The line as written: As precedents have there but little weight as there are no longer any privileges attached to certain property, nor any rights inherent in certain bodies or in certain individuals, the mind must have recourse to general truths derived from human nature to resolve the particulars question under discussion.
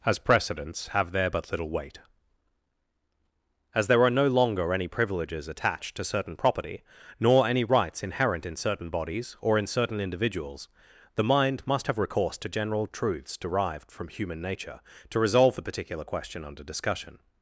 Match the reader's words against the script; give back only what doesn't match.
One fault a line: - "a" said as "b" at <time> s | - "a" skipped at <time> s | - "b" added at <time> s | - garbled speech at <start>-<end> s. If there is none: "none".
- "particulars" said as "particular" at 15.6 s